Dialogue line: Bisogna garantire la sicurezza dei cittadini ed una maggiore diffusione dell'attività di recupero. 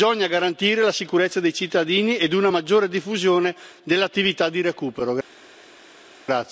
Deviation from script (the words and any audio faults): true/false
false